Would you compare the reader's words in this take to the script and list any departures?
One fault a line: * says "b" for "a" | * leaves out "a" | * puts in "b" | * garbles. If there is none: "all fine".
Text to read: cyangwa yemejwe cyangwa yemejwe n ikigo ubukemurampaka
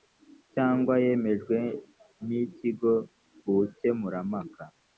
* leaves out "cyangwa yemejwe"